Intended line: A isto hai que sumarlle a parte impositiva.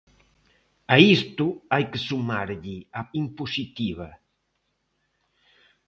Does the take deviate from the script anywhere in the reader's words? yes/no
yes